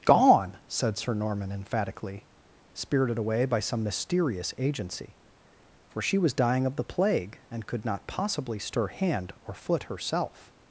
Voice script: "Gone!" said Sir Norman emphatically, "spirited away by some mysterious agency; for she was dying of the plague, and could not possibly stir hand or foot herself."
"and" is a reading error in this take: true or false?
false